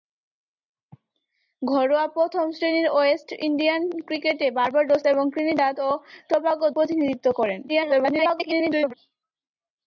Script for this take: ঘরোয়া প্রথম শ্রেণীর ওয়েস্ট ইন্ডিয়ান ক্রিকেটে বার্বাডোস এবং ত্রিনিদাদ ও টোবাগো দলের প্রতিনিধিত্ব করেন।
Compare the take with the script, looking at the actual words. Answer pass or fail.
fail